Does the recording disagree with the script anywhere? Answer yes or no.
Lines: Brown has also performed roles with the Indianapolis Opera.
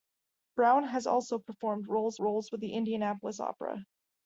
yes